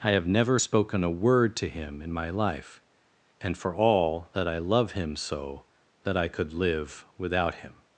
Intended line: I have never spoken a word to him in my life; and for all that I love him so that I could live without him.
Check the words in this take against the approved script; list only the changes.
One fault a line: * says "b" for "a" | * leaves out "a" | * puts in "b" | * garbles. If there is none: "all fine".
all fine